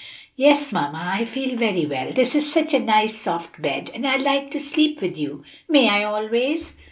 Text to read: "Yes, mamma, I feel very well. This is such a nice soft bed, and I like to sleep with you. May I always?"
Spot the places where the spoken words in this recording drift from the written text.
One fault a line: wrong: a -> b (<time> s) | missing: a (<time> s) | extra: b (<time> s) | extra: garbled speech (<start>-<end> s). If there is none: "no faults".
no faults